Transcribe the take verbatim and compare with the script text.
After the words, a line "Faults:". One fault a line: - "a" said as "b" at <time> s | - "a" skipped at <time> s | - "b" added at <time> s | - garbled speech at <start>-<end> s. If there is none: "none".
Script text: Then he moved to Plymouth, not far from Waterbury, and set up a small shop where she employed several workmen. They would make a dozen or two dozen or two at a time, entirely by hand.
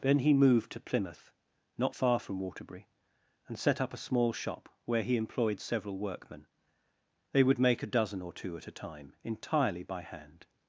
Then he moved to Plymouth, not far from Waterbury, and set up a small shop where he employed several workmen. They would make a dozen or two at a time, entirely by hand.
Faults:
- "she" said as "he" at 5.0 s
- "dozen or two" skipped at 8.6 s